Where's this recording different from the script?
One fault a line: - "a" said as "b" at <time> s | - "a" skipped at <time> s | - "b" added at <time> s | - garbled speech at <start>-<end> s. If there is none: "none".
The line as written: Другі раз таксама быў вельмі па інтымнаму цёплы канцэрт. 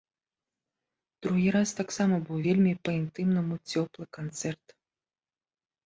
none